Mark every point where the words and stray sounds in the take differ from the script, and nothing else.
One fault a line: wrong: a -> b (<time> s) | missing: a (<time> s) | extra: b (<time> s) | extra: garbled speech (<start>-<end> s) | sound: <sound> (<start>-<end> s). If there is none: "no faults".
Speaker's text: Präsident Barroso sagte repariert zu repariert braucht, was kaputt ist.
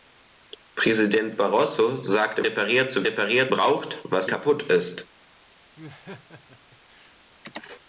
sound: laugh (5.8-7.2 s)